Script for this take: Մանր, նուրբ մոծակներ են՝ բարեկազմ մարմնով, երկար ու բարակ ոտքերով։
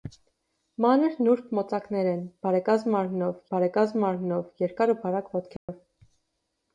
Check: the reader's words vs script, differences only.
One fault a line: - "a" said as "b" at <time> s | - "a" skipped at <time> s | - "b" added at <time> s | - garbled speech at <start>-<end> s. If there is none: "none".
- "բարեկազմ մարմնով" added at 3.5 s